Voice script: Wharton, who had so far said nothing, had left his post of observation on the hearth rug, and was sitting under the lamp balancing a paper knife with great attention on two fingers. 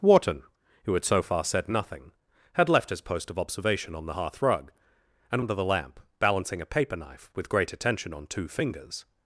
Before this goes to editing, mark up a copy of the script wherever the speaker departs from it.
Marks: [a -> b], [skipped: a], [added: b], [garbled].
Wharton, who had so far said nothing, had left his post of observation on the hearth rug, and [skipped: was sitting] under the lamp balancing a paper knife with great attention on two fingers.